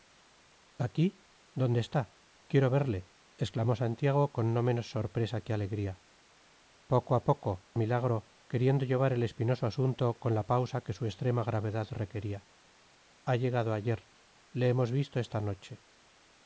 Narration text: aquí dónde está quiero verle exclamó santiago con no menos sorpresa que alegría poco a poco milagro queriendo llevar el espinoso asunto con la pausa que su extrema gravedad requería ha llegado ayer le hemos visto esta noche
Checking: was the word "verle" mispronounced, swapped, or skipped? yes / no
no